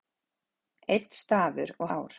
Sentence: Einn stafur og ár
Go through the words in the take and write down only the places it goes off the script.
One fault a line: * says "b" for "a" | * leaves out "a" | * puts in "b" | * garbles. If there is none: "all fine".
all fine